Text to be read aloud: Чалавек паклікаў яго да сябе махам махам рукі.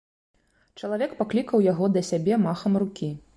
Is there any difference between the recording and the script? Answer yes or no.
yes